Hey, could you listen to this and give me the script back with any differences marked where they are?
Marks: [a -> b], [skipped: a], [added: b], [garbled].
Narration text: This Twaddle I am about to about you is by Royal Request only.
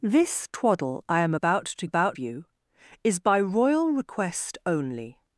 This Twaddle I am about to about you is by Royal Request only.